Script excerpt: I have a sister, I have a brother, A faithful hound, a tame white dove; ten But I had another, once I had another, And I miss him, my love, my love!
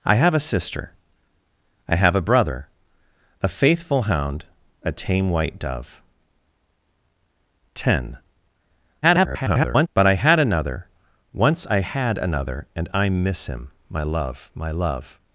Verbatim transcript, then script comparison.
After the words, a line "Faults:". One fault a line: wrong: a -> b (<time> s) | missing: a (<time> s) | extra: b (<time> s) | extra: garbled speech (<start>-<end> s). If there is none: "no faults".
I have a sister, I have a brother, A faithful hound, a tame white dove; ten [garbled] But I had another, once I had another, And I miss him, my love, my love!
Faults:
extra: garbled speech (9.0-9.9 s)